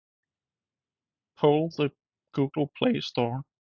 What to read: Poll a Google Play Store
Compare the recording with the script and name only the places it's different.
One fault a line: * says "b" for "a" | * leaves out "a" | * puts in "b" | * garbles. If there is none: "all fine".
* says "the" for "a"